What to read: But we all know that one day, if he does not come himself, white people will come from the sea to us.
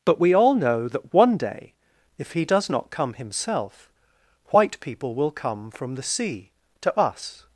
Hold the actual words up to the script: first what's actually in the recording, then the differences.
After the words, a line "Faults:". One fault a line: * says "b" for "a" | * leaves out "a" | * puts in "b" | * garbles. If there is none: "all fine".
But we all know that one day, if he does not come himself, white people will come from the sea to us.
Faults:
all fine